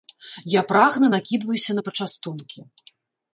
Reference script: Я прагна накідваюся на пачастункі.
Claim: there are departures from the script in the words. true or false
false